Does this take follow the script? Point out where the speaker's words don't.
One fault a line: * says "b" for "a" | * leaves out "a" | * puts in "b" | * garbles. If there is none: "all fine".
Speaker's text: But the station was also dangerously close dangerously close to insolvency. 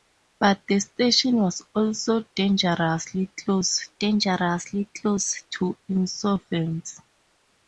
all fine